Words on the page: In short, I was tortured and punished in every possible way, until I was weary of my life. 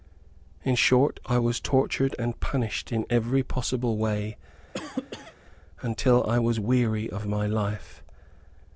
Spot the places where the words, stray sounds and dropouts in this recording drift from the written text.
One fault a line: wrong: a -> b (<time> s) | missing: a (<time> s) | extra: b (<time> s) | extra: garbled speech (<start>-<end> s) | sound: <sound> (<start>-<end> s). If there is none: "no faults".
sound: cough (4.7-5.3 s)